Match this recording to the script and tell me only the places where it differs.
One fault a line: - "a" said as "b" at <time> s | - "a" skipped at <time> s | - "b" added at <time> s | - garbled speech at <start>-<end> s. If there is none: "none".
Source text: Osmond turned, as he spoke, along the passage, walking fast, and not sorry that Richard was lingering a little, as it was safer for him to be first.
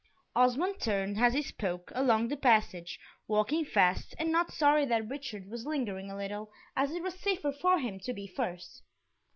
none